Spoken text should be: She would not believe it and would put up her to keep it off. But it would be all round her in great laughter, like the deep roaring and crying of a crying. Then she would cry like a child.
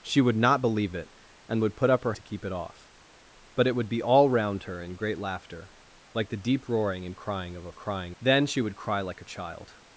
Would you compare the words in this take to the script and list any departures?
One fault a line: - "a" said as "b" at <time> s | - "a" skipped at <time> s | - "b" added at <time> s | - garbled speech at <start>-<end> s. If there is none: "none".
none